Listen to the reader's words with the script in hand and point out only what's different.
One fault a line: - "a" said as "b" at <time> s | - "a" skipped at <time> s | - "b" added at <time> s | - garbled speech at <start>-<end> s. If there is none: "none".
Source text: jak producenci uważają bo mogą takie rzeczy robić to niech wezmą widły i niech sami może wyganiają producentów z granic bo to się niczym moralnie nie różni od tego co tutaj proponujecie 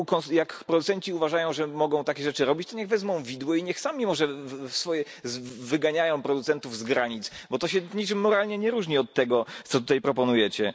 - "bo" said as "że" at 1.5 s